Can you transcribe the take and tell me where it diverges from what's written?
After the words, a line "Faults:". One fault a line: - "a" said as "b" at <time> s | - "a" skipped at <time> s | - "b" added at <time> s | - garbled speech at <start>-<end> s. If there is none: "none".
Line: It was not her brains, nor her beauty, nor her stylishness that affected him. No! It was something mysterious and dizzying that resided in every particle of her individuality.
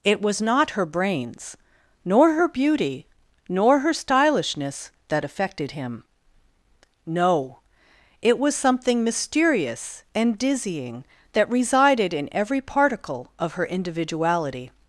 It was not her brains, nor her beauty, nor her stylishness that affected him. No! It was something mysterious and dizzying that resided in every particle of her individuality.
Faults:
none